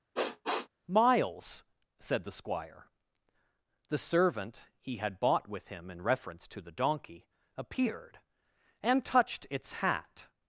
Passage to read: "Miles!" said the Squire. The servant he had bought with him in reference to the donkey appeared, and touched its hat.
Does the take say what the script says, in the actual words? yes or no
yes